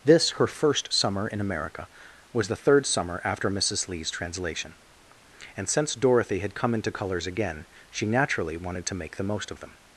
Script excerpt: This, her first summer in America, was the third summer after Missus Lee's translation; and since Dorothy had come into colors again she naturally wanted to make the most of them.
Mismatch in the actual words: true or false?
false